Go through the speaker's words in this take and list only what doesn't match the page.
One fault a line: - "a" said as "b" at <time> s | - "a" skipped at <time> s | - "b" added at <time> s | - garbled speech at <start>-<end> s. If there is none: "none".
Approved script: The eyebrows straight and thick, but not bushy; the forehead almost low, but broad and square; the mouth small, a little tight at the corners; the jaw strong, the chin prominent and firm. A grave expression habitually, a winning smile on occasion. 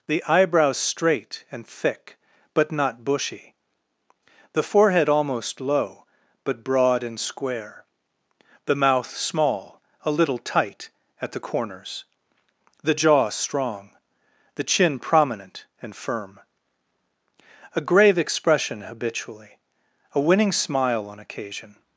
none